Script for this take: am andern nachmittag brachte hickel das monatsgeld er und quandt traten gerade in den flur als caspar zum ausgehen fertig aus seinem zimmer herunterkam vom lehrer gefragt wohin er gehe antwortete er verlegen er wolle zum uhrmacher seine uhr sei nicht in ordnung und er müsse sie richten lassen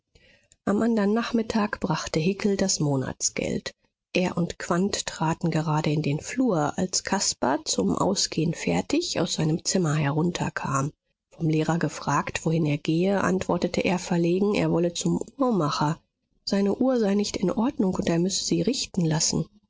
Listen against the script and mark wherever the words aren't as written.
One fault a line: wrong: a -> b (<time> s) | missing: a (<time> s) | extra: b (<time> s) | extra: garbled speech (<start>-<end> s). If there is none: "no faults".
no faults